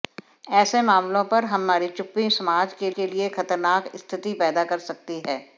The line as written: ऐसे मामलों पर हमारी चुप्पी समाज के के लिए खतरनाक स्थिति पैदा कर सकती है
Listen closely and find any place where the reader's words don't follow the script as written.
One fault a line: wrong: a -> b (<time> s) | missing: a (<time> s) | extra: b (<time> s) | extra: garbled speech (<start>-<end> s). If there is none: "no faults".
no faults